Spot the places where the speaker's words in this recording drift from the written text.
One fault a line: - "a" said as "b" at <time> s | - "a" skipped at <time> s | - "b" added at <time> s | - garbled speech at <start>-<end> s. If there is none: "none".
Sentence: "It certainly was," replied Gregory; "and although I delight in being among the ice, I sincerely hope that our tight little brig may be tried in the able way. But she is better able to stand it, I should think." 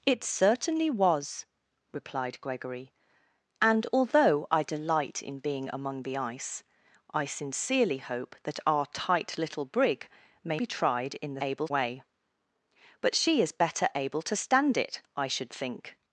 none